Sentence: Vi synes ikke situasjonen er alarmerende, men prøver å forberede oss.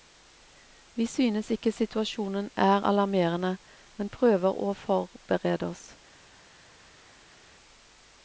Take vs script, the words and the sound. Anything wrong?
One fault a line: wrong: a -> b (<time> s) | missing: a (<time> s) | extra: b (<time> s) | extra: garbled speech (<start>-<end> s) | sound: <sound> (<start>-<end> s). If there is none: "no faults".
no faults